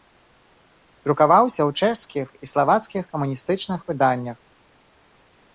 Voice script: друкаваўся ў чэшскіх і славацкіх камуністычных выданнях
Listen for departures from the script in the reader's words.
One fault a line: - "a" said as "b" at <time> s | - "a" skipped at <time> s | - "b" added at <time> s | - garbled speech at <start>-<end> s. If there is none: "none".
none